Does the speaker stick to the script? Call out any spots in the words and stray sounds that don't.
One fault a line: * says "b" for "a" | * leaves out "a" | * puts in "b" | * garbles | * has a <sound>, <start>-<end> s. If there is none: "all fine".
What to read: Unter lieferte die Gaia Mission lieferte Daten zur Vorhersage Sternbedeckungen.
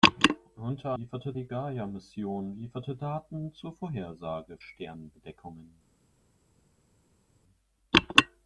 all fine